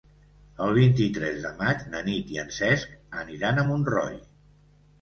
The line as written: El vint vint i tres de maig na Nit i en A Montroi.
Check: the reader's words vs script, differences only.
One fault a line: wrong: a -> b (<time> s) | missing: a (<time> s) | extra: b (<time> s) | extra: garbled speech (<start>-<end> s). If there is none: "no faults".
missing: vint (0.9 s)
extra: Cesc aniran (2.6 s)